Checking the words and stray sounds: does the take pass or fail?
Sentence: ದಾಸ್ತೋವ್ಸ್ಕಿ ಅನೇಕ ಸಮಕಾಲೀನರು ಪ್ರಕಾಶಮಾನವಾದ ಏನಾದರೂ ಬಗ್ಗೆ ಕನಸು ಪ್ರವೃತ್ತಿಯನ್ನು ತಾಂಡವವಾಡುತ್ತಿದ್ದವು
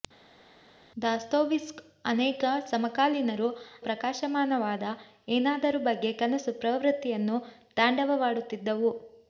pass